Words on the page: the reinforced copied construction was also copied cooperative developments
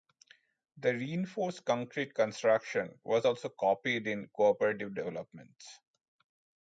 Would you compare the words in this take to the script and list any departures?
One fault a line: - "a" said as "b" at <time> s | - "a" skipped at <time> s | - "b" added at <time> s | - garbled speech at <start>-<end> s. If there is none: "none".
- "copied" said as "concrete" at 1.6 s
- "in" added at 4.1 s